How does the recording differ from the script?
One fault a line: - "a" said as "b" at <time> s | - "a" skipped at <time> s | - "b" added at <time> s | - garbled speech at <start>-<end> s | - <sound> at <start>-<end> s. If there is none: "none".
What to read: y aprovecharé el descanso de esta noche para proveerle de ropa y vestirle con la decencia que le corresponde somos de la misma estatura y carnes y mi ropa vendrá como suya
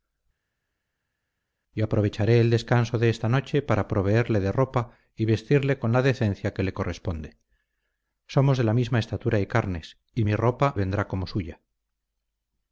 none